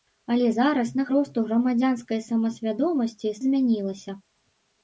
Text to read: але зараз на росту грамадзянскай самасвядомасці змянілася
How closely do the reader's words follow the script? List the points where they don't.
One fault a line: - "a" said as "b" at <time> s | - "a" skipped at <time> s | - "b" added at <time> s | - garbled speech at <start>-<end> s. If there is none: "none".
none